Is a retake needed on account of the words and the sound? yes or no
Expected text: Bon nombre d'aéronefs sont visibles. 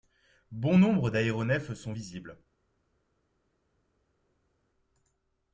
no